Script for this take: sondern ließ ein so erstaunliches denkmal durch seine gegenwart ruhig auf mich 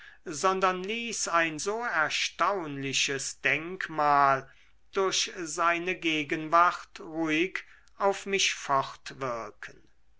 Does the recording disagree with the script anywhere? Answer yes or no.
no